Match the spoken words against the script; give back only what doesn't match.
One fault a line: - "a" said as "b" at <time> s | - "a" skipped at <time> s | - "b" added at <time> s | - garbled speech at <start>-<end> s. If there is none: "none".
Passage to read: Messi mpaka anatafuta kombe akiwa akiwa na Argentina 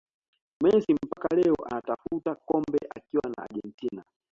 - "leo" added at 1.4 s
- "akiwa" skipped at 3.2 s